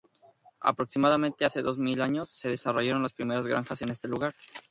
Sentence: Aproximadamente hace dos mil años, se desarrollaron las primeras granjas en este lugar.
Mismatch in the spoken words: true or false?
false